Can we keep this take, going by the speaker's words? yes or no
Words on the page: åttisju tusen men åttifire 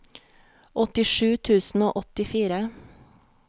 no